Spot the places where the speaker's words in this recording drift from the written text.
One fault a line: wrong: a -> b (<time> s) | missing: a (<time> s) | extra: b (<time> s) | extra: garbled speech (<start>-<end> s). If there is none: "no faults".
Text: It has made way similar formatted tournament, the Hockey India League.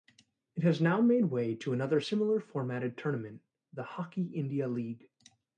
extra: now (0.8 s)
extra: to another (1.6 s)